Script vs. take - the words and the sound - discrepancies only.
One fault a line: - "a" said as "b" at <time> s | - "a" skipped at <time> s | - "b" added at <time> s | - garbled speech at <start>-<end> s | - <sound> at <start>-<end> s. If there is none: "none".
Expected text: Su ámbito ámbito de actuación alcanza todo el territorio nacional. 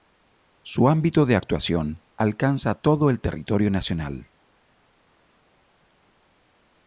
- "ámbito" skipped at 1.3 s